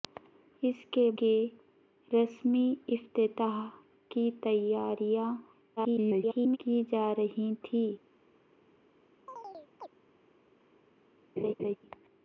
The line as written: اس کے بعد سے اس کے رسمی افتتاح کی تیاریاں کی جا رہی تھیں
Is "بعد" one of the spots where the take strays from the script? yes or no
yes